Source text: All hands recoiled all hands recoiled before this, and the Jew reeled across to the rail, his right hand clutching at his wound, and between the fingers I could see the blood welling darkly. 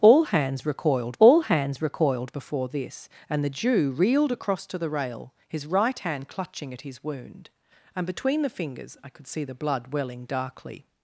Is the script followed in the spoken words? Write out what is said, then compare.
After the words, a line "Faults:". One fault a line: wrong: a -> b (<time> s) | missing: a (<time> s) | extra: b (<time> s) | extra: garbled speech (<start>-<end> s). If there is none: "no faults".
All hands recoiled all hands recoiled before this, and the Jew reeled across to the rail, his right hand clutching at his wound, and between the fingers I could see the blood welling darkly.
Faults:
no faults